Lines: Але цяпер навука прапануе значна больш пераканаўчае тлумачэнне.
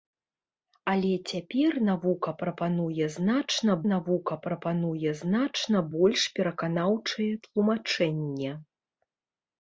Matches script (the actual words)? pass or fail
fail